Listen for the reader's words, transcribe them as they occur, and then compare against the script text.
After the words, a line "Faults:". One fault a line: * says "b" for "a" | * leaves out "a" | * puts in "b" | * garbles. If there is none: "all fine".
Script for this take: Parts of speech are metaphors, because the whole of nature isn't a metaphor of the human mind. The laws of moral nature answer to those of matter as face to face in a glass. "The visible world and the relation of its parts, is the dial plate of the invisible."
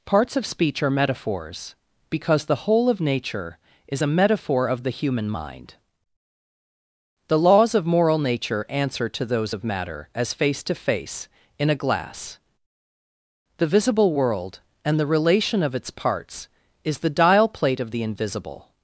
Parts of speech are metaphors, because the whole of nature is a metaphor of the human mind. The laws of moral nature answer to those of matter as face to face in a glass. "The visible world and the relation of its parts, is the dial plate of the invisible."
Faults:
* says "is" for "isn't"